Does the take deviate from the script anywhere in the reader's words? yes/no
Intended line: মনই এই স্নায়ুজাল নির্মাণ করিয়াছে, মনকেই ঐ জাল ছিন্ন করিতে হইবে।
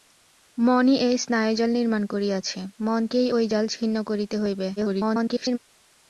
yes